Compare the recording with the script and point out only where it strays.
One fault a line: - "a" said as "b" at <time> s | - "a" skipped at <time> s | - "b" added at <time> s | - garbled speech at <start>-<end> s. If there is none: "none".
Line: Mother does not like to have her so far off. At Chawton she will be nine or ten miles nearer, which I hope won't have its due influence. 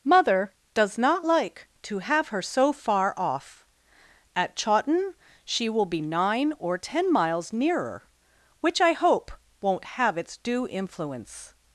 none